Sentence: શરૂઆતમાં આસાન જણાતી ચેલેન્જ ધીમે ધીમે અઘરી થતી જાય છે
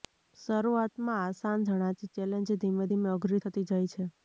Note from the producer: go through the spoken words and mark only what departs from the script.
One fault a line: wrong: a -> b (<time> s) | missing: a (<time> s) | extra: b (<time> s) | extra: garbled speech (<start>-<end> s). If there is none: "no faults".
no faults